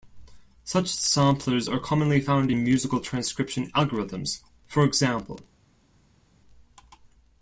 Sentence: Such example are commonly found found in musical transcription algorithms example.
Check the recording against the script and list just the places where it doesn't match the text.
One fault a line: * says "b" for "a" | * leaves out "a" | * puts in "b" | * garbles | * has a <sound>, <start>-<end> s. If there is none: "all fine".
* says "samplers" for "example"
* leaves out "found"
* puts in "for"